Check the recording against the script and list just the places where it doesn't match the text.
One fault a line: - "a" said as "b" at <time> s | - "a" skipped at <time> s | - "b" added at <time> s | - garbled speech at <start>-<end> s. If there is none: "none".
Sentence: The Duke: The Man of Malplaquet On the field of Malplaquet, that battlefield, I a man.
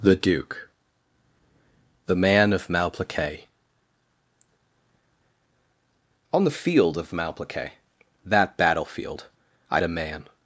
none